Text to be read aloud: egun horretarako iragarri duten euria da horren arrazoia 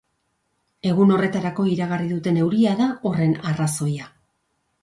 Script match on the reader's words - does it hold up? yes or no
yes